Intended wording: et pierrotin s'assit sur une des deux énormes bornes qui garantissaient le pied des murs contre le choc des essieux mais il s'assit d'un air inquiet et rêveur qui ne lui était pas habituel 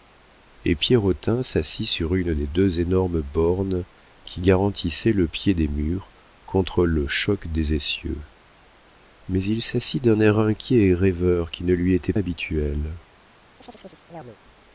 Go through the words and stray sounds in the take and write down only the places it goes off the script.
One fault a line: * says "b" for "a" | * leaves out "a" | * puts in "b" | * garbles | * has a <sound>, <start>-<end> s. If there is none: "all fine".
* leaves out "pas"
* has a chirp, 13.6-14.4 s